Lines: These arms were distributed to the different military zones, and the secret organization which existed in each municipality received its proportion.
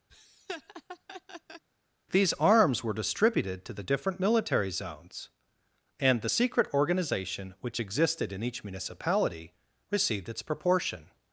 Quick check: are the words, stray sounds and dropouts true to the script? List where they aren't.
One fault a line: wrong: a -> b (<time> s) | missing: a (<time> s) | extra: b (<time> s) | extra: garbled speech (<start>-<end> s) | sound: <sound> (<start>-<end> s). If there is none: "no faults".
sound: laugh (0.1-1.6 s)